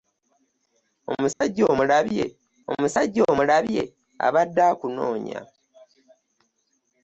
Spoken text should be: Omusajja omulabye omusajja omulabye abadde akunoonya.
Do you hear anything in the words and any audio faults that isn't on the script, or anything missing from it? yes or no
yes